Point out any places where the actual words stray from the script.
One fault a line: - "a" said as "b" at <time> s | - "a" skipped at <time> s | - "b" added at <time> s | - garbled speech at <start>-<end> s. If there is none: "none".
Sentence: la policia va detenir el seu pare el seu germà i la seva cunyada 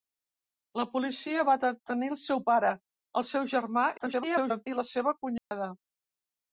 - garbled speech at 4.0-4.7 s